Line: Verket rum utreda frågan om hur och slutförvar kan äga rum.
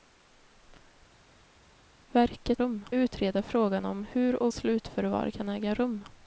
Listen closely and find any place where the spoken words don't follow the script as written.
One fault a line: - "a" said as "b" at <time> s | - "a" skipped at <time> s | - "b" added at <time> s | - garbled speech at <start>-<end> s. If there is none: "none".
none